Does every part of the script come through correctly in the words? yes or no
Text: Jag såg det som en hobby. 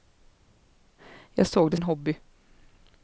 no